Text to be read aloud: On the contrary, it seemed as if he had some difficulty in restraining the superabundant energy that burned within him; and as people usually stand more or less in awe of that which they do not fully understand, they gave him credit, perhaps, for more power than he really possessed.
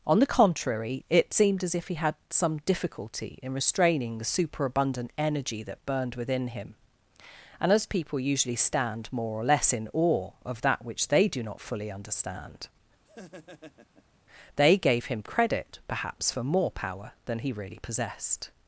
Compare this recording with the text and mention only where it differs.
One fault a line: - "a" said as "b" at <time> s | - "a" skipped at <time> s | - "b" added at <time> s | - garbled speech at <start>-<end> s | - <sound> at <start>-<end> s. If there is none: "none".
- laugh at 13.0-14.2 s